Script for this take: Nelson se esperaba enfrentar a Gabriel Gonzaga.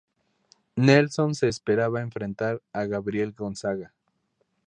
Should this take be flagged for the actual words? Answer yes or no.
no